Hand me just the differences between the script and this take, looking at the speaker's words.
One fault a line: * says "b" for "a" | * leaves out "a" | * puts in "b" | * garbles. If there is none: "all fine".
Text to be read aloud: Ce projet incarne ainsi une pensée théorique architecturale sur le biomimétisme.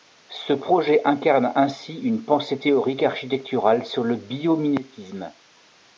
all fine